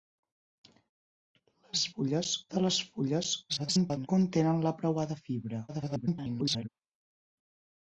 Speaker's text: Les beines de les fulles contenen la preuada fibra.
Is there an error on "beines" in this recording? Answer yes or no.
yes